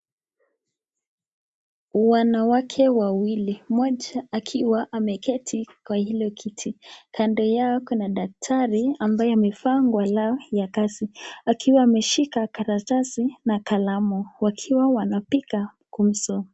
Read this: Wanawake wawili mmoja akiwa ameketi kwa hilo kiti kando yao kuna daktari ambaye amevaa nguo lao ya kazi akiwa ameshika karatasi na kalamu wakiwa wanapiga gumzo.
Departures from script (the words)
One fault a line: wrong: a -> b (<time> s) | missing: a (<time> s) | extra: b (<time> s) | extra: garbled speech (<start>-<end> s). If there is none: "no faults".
no faults